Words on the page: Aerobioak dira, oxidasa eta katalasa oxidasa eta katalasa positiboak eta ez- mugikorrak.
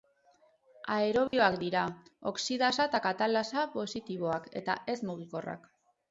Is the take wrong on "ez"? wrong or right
right